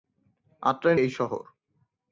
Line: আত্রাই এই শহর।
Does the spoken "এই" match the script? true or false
true